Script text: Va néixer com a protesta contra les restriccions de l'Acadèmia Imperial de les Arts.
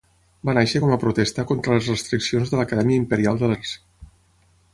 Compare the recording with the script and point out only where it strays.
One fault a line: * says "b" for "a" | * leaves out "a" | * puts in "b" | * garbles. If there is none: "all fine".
* leaves out "les"